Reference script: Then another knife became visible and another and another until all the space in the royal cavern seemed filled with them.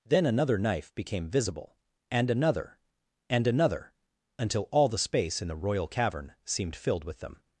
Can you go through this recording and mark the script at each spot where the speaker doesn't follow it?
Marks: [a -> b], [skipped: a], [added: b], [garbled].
Then another knife became visible and another and another until all the space in the royal cavern seemed filled with them.